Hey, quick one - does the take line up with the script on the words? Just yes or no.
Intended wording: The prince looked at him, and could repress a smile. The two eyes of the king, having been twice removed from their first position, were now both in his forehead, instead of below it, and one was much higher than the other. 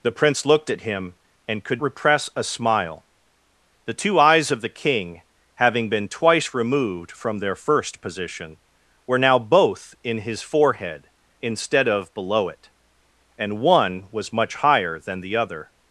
yes